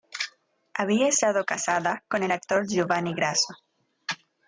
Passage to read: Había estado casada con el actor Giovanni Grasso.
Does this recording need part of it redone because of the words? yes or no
no